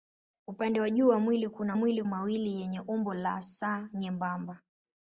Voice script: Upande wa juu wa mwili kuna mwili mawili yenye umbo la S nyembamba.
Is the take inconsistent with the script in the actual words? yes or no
no